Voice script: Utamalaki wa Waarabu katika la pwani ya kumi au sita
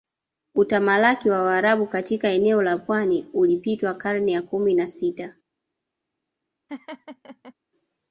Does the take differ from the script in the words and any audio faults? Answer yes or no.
yes